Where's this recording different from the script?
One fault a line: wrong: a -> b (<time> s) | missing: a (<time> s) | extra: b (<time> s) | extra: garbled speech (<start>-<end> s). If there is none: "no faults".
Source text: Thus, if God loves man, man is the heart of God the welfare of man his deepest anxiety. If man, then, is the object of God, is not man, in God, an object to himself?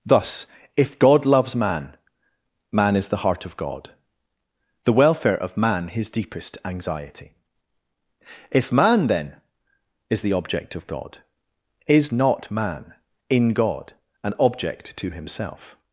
no faults